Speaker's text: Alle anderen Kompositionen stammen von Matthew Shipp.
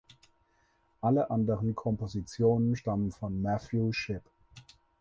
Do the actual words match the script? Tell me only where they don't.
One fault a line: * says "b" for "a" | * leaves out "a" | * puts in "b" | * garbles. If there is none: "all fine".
all fine